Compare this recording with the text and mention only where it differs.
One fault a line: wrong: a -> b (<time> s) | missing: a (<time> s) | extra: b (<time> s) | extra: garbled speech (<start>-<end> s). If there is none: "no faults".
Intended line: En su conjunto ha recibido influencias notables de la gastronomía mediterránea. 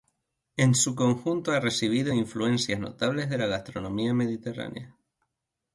no faults